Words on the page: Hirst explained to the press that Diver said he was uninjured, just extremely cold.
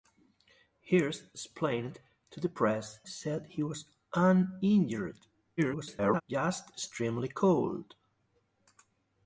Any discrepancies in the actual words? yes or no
yes